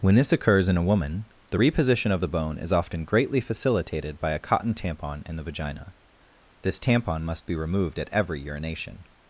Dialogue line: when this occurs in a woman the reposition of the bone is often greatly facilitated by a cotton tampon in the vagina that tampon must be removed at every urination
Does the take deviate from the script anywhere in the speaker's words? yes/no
yes